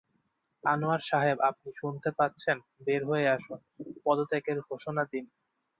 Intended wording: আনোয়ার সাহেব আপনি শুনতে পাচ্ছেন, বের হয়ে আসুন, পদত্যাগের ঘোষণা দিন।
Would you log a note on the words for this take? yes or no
no